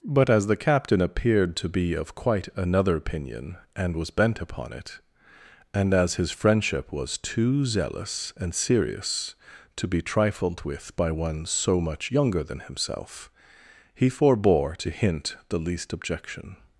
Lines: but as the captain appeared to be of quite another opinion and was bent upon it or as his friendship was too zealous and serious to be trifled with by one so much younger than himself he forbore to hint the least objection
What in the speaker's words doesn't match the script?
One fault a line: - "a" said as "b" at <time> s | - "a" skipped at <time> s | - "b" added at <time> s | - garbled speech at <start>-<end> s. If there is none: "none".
- "or" said as "and" at 5.8 s